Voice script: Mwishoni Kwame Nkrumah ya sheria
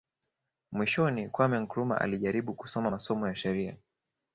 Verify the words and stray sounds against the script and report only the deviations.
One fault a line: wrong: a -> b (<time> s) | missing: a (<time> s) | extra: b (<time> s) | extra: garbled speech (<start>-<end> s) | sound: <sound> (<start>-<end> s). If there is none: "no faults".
extra: alijaribu kusoma masomo (2.0 s)